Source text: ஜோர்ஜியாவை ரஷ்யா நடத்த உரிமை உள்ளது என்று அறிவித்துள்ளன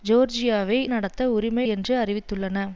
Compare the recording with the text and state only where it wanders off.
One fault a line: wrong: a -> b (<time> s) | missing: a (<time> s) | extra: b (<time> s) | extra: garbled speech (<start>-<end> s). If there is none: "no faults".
missing: ரஷ்யா (0.8 s)
missing: உள்ளது (1.7 s)